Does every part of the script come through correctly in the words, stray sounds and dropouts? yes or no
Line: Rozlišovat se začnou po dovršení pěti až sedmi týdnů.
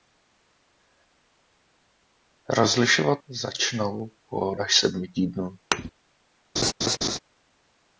no